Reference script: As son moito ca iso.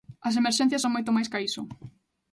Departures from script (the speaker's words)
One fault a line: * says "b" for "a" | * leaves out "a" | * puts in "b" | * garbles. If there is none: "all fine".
* puts in "emerxencias"
* puts in "máis"